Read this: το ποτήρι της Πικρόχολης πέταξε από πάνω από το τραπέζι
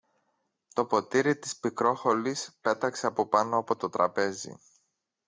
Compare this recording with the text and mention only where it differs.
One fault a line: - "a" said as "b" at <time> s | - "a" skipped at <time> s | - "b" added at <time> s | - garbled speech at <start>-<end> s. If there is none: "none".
none